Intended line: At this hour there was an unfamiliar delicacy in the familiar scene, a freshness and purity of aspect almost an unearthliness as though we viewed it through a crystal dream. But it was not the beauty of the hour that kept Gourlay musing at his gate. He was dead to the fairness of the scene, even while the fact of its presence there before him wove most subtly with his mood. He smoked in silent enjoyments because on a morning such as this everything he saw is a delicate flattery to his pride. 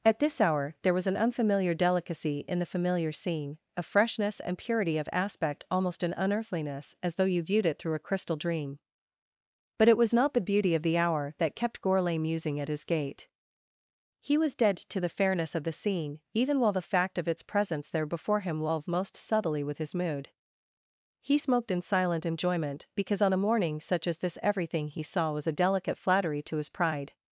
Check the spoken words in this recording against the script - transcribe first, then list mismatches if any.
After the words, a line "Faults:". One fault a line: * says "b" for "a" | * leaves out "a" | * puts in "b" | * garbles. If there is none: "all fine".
At this hour there was an unfamiliar delicacy in the familiar scene, a freshness and purity of aspect almost an unearthliness as though you viewed it through a crystal dream. But it was not the beauty of the hour that kept Gourlay musing at his gate. He was dead to the fairness of the scene, even while the fact of its presence there before him wove most subtly with his mood. He smoked in silent enjoyment because on a morning such as this everything he saw was a delicate flattery to his pride.
Faults:
* says "you" for "we"
* says "enjoyment" for "enjoyments"
* says "was" for "is"